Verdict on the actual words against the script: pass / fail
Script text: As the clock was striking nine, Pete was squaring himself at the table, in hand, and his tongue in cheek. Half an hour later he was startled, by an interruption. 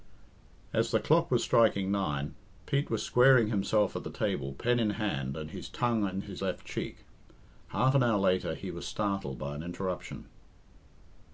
fail